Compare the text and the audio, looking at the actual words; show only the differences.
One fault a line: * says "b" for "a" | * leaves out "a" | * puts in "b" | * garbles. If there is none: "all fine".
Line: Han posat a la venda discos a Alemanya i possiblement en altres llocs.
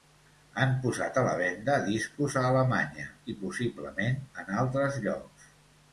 all fine